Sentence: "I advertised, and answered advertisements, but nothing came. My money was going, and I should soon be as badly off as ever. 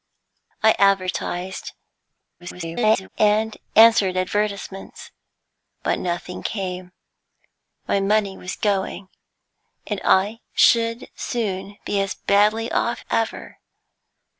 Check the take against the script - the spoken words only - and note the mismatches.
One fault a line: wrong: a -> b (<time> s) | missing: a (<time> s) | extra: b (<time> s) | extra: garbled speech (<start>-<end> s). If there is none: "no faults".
extra: garbled speech (2.4-3.1 s)
missing: as (13.0 s)